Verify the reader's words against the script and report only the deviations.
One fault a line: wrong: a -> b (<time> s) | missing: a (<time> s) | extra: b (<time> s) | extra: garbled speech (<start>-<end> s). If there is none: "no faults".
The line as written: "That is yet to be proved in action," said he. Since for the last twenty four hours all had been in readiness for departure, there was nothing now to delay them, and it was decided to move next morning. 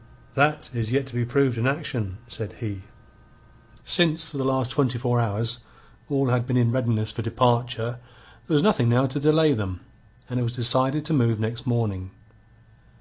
no faults